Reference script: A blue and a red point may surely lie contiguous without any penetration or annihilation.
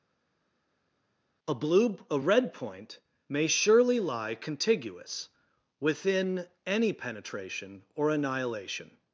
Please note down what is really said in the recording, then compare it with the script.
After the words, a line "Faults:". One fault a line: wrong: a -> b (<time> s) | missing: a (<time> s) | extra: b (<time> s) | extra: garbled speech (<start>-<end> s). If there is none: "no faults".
A blue a red point may surely lie contiguous within any penetration or annihilation.
Faults:
missing: and (2.0 s)
wrong: without -> within (5.8 s)